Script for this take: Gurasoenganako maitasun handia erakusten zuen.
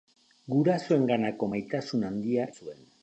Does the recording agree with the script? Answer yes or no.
no